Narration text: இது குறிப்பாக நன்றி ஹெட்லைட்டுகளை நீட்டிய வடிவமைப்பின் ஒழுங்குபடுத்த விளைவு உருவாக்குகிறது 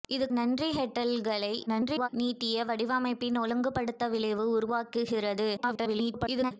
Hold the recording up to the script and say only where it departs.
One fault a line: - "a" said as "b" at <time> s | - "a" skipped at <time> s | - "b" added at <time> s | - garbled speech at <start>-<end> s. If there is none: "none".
- "குறிப்பாக" skipped at 0.2 s
- garbled speech at 1.7-2.1 s
- garbled speech at 5.6-6.5 s